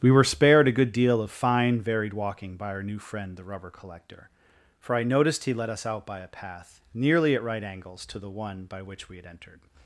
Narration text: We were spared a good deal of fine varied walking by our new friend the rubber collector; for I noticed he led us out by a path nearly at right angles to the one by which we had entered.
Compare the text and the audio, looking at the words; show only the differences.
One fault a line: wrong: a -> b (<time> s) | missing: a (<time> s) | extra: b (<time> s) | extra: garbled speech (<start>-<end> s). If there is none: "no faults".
no faults